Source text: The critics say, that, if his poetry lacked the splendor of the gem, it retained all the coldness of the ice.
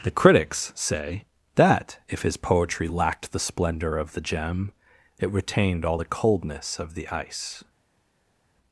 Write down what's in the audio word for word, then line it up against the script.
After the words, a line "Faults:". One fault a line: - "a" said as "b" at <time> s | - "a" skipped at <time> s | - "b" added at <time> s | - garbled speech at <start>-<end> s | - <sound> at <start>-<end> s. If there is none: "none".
The critics say, that, if his poetry lacked the splendor of the gem, it retained all the coldness of the ice.
Faults:
none